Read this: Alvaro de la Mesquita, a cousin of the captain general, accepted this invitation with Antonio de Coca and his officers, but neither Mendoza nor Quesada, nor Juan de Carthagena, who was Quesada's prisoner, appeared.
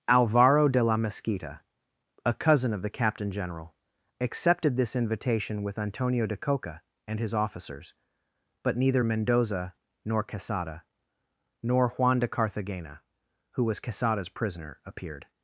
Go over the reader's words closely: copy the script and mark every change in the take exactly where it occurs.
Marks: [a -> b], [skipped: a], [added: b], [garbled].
Alvaro de la Mesquita, a cousin of the captain general, accepted this invitation with Antonio de Coca and his officers, but neither Mendoza nor Quesada, nor Juan de Carthagena, who was Quesada's prisoner, appeared.